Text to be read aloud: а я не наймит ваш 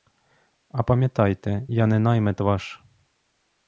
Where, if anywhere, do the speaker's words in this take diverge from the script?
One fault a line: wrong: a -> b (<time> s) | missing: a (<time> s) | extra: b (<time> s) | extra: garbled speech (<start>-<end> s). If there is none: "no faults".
extra: пам'ятайте (0.8 s)